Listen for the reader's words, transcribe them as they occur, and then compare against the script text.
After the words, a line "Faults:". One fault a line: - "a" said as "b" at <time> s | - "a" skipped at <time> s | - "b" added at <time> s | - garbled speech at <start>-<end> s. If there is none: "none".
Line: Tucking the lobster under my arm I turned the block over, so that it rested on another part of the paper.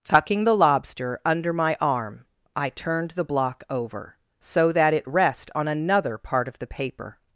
Tucking the lobster under my arm I turned the block over, so that it rest on another part of the paper.
Faults:
- "rested" said as "rest" at 5.1 s